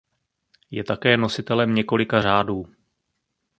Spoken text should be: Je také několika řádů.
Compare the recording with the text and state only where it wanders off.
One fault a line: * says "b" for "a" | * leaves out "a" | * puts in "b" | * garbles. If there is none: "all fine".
* puts in "nositelem"